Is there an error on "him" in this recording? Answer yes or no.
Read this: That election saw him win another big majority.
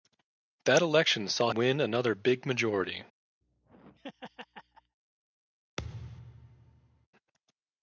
yes